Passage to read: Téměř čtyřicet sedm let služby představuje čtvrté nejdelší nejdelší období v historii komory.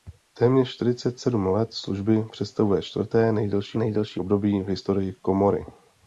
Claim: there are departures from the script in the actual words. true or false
false